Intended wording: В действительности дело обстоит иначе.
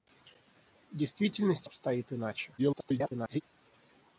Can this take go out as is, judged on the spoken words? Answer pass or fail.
fail